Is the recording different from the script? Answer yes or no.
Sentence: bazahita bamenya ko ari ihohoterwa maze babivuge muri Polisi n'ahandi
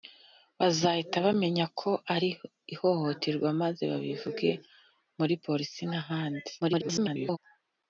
yes